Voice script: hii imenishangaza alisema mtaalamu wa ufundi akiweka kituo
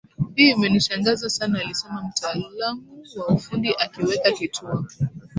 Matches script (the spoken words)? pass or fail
fail